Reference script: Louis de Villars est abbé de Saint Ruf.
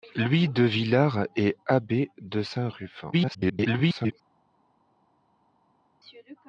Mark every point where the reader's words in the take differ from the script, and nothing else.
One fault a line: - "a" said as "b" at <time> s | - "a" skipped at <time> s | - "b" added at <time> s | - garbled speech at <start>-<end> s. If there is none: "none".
- garbled speech at 3.1-4.1 s